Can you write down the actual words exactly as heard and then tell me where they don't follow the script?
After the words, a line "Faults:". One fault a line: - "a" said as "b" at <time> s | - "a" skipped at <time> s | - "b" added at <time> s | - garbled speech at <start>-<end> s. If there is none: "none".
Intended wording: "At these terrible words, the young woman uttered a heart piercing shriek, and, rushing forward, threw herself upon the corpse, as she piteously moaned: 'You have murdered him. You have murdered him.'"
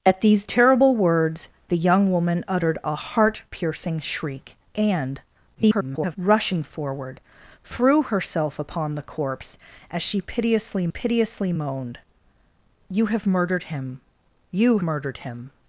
"At these terrible words, the young woman uttered a heart piercing shriek, and, [garbled] rushing forward, threw herself upon the corpse, as she piteously piteously moaned: 'You have murdered him. You murdered him.'"
Faults:
- garbled speech at 5.5-6.2 s
- "piteously" added at 10.9 s
- "have" skipped at 14.8 s